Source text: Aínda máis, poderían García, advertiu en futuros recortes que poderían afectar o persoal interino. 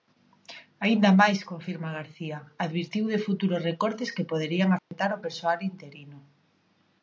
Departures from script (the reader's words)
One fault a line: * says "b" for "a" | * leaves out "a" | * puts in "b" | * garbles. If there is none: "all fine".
* says "confirma" for "poderían"
* says "de" for "en"